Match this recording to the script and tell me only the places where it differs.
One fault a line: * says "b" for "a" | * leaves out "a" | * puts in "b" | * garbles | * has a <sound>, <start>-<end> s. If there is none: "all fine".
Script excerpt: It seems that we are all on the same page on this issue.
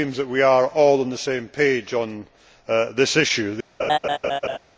* has a laugh, 3.8-4.6 s